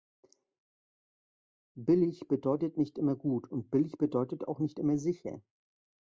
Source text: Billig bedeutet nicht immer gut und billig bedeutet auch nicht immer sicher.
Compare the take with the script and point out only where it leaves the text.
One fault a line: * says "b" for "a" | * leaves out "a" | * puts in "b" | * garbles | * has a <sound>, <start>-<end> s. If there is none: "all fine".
all fine